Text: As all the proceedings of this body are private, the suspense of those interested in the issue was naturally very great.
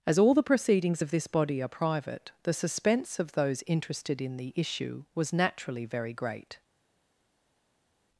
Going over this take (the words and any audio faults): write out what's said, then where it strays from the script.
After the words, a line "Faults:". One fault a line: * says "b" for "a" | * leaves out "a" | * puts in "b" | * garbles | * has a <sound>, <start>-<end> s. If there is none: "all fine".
As all the proceedings of this body are private, the suspense of those interested in the issue was naturally very great.
Faults:
all fine